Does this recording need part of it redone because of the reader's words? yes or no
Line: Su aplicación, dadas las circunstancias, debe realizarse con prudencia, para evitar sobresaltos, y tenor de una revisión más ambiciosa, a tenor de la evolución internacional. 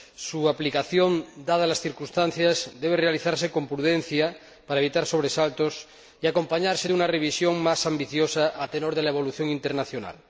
yes